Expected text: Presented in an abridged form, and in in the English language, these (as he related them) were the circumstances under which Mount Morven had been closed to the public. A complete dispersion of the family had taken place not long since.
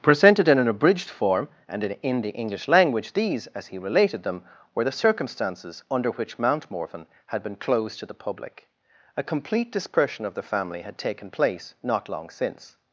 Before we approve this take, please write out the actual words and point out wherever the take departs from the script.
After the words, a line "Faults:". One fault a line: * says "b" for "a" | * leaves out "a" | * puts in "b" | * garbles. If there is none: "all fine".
Presented in an abridged form, and in in the English language, these (as he related them) were the circumstances under which Mount Morven had been closed to the public. A complete dispersion of the family had taken place not long since.
Faults:
all fine